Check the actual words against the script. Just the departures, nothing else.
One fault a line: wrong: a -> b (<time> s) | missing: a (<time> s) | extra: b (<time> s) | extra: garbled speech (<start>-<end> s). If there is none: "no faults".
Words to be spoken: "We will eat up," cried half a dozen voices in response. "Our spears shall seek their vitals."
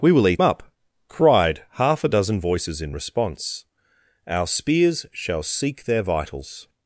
no faults